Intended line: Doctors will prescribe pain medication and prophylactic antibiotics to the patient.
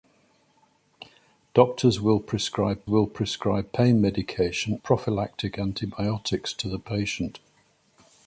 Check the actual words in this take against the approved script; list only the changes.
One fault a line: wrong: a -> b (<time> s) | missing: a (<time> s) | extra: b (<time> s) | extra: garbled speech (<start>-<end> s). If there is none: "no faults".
extra: will prescribe (2.9 s)
missing: and (4.8 s)